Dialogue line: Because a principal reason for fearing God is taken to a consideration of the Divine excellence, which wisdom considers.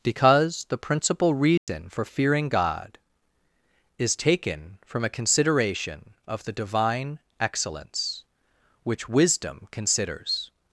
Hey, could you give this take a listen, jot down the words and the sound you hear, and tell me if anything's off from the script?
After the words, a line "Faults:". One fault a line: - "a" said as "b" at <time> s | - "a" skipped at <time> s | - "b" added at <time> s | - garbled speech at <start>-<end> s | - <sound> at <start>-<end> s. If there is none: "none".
Because the principal reason for fearing God is taken from a consideration of the Divine excellence, which wisdom considers.
Faults:
- "a" said as "the" at 0.7 s
- dropout at 1.6-1.7 s
- "to" said as "from" at 4.8 s